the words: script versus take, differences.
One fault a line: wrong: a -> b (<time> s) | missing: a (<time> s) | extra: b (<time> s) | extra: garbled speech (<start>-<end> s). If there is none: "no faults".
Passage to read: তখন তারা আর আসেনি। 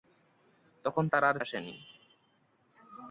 no faults